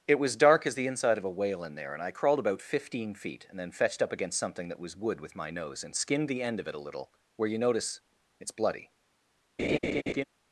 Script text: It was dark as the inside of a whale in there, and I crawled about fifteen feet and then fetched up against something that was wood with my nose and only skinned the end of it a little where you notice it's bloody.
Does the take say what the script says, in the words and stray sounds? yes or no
no